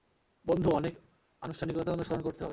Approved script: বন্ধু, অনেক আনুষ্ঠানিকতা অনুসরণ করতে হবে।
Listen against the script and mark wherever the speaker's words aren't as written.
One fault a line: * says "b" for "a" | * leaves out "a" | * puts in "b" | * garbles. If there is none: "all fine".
all fine